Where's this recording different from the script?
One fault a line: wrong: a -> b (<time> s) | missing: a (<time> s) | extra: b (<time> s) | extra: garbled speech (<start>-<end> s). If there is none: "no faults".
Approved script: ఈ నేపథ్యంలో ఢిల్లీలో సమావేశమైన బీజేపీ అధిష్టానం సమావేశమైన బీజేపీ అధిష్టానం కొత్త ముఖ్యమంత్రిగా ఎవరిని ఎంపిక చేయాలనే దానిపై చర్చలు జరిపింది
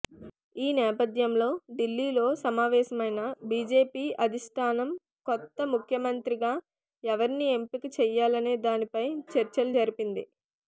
missing: సమావేశమైన బీజేపీ అధిష్టానం (4.9 s)